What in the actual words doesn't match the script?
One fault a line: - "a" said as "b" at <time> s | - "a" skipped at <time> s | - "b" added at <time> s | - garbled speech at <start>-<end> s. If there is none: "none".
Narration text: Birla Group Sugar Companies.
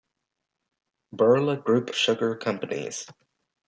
none